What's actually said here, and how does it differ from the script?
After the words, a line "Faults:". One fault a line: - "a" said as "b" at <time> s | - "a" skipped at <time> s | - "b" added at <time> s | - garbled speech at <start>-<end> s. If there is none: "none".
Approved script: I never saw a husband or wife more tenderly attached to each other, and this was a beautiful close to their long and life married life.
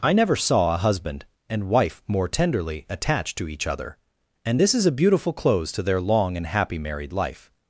I never saw a husband and wife more tenderly attached to each other, and this is a beautiful close to their long and happy married life.
Faults:
- "or" said as "and" at 1.5 s
- "was" said as "is" at 4.7 s
- "life" said as "happy" at 6.5 s